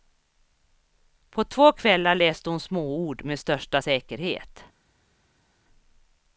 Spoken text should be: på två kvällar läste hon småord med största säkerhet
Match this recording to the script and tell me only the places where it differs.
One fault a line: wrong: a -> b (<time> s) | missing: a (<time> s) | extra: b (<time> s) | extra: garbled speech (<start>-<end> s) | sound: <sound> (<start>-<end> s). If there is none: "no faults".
no faults